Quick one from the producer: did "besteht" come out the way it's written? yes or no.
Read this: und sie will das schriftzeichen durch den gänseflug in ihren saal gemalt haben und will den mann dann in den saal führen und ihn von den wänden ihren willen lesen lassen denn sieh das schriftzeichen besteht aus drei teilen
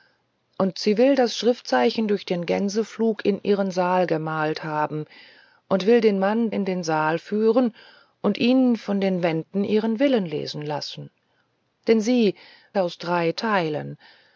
no